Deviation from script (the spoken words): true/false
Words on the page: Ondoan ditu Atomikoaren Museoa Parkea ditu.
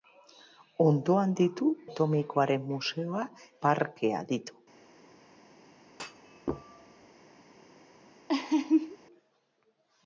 false